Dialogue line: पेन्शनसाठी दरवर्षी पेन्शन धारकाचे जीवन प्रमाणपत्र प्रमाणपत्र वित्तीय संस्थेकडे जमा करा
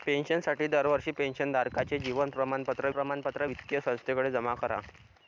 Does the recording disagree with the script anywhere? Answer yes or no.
no